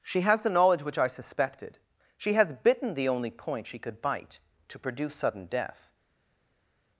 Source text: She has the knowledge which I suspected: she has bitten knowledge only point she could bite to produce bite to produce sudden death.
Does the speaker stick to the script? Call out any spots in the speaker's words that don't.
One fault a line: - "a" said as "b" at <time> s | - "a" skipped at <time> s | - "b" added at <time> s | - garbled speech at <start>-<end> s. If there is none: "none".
- "knowledge" said as "the" at 2.9 s
- "bite to produce" skipped at 5.2 s